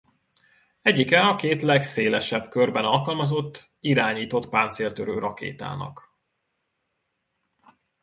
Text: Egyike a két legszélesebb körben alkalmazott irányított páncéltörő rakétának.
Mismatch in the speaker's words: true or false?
false